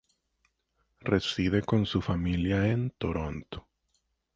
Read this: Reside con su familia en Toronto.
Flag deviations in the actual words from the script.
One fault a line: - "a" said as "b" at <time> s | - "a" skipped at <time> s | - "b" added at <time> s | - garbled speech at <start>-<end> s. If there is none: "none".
none